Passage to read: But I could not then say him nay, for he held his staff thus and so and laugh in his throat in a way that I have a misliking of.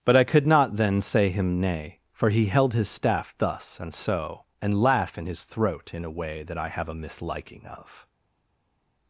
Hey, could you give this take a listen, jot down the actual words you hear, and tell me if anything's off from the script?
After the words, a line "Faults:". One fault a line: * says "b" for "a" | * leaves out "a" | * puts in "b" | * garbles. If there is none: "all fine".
But I could not then say him nay, for he held his staff thus and so and laugh in his throat in a way that I have a misliking of.
Faults:
all fine